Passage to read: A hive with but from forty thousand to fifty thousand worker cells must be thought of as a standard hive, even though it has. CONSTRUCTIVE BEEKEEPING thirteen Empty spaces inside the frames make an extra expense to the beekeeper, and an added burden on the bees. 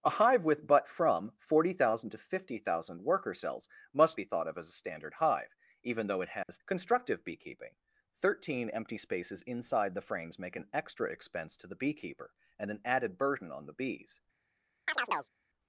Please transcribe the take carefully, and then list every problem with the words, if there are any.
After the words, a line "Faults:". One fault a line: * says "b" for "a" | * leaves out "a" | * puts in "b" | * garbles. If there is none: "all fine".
A hive with but from forty thousand to fifty thousand worker cells must be thought of as a standard hive, even though it has. CONSTRUCTIVE BEEKEEPING thirteen Empty spaces inside the frames make an extra expense to the beekeeper, and an added burden on the bees.
Faults:
all fine